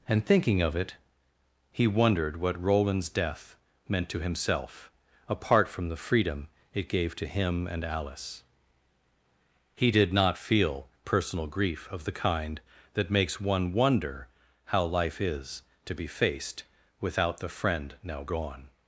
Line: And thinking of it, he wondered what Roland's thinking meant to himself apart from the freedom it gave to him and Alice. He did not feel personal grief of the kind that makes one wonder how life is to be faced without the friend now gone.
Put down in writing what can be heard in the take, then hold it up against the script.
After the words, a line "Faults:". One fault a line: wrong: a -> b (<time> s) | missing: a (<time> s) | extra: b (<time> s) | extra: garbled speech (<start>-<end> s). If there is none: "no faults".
And thinking of it, he wondered what Roland's death meant to himself apart from the freedom it gave to him and Alice. He did not feel personal grief of the kind that makes one wonder how life is to be faced without the friend now gone.
Faults:
wrong: thinking -> death (3.1 s)